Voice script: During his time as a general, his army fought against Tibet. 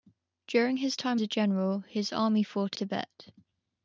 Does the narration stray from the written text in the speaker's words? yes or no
yes